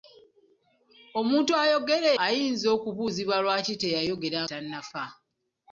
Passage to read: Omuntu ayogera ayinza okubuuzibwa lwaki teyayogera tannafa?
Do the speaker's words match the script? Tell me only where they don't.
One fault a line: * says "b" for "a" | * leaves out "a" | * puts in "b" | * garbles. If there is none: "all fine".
all fine